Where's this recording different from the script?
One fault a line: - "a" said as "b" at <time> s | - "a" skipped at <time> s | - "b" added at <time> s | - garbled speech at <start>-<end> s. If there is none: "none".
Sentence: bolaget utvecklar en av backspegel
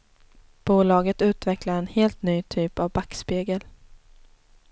- "helt ny typ" added at 1.9 s